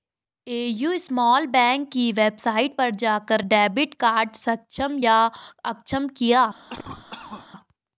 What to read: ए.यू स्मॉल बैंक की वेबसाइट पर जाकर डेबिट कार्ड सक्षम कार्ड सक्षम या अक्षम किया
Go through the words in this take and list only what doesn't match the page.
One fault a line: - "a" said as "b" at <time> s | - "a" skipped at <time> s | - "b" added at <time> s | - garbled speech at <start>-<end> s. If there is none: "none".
- "कार्ड सक्षम" skipped at 5.0 s